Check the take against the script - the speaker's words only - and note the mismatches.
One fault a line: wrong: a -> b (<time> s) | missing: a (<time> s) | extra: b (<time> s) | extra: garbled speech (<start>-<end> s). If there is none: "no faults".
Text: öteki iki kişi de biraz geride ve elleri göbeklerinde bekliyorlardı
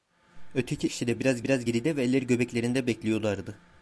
missing: iki (0.9 s)
extra: biraz (1.4 s)